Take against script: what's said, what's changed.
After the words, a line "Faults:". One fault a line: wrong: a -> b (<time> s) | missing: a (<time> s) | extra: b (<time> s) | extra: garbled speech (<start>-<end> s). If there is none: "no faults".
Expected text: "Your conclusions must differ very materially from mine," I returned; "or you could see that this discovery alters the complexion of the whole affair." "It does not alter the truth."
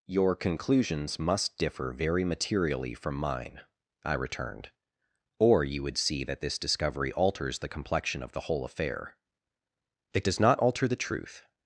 "Your conclusions must differ very materially from mine," I returned; "or you would see that this discovery alters the complexion of the whole affair." "It does not alter the truth."
Faults:
wrong: could -> would (5.8 s)